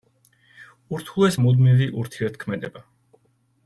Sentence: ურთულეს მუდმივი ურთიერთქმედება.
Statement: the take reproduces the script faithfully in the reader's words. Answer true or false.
true